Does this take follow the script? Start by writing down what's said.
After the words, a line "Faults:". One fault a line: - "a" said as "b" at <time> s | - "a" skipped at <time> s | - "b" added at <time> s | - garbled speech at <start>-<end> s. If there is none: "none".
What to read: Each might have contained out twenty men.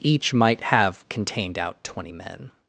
Each might have contained out twenty men.
Faults:
none